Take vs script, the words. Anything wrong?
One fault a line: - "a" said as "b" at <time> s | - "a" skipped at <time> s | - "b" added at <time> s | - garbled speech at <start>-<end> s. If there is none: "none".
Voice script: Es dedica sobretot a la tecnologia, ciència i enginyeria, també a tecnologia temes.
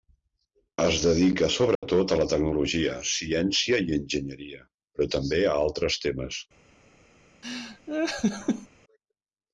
- "però" added at 5.0 s
- "tecnologia" said as "altres" at 5.7 s